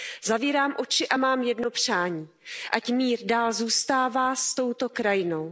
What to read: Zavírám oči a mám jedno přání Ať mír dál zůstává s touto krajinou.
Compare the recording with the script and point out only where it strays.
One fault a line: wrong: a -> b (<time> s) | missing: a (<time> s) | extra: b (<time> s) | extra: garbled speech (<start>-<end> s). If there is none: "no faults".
no faults